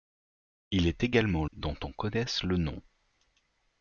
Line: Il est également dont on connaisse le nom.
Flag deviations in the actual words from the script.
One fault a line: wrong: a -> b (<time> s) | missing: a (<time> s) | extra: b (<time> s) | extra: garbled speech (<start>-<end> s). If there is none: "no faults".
no faults